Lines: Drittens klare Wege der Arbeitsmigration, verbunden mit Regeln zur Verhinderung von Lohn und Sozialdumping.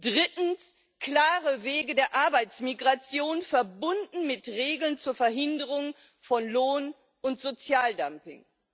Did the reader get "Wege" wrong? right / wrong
right